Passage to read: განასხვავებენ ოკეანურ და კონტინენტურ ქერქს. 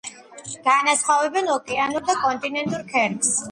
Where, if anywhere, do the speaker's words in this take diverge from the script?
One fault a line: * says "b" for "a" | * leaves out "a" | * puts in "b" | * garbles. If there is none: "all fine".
all fine